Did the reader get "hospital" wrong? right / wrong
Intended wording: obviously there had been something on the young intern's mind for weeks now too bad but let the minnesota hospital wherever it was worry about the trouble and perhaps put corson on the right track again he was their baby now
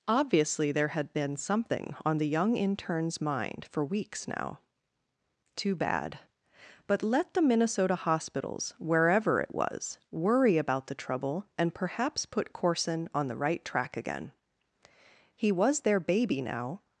wrong